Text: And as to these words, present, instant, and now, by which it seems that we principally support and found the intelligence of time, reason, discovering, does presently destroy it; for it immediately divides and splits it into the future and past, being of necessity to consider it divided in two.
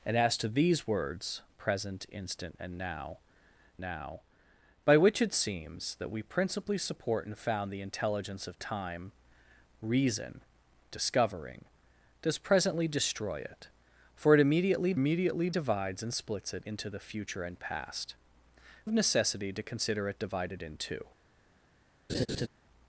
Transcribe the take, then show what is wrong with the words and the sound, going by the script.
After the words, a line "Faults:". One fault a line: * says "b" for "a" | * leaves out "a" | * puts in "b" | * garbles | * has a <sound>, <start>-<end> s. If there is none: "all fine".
And as to these words, present, instant, and now now, by which it seems that we principally support and found the intelligence of time, reason, discovering, does presently destroy it; for it immediately immediately divides and splits it into the future and past, of necessity to consider it divided in two.
Faults:
* puts in "now"
* puts in "immediately"
* leaves out "being"
* has a laugh, 22.1-22.5 s